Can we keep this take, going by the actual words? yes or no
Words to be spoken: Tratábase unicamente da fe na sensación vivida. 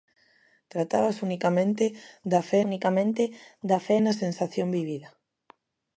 no